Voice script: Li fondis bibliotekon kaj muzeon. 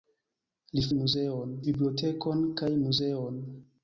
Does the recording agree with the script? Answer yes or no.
no